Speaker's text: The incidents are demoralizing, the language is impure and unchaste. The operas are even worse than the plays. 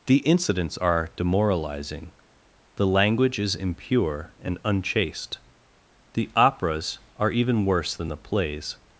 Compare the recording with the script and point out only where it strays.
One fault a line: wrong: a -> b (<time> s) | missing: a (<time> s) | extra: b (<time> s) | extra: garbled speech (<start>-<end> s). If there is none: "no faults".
no faults